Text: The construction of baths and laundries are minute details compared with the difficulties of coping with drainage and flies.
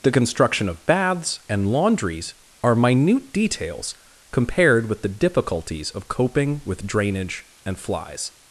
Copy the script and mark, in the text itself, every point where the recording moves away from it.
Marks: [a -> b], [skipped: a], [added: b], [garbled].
The construction of baths and laundries are minute details compared with the difficulties of coping with drainage and flies.